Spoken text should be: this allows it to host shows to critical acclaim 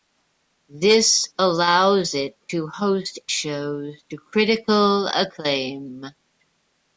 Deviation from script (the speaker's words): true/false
false